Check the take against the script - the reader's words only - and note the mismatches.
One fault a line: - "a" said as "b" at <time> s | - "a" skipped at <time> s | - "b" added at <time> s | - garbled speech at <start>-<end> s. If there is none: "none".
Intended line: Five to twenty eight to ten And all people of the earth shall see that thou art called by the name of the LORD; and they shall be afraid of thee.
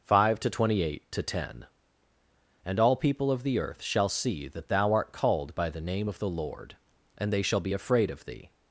none